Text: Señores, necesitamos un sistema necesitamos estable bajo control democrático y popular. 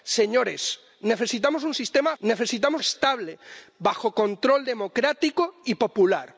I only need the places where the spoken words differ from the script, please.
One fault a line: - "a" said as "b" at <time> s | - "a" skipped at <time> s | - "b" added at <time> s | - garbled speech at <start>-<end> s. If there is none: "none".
none